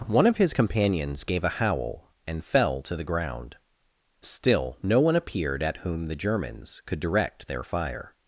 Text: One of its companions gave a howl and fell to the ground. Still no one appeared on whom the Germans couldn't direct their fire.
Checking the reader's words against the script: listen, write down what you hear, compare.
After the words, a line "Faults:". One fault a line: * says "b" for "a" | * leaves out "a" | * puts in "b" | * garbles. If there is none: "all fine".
One of his companions gave a howl and fell to the ground. Still no one appeared at whom the Germans could direct their fire.
Faults:
* says "his" for "its"
* says "at" for "on"
* says "could" for "couldn't"